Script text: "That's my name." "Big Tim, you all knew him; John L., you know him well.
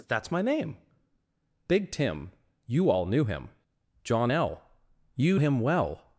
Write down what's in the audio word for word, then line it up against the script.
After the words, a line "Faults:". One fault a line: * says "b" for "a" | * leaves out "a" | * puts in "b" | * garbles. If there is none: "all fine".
"That's my name." "Big Tim, you all knew him; John L., you him well.
Faults:
* leaves out "know"